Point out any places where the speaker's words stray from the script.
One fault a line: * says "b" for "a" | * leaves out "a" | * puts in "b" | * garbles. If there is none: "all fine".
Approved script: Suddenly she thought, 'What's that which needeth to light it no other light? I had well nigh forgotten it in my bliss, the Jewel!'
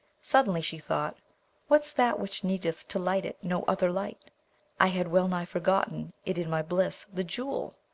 all fine